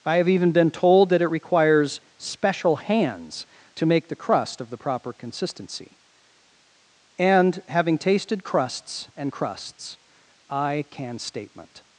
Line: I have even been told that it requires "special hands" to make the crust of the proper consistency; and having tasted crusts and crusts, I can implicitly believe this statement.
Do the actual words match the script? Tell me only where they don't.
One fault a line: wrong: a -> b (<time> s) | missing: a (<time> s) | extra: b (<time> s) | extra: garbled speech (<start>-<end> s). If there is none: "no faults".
missing: implicitly believe this (11.2 s)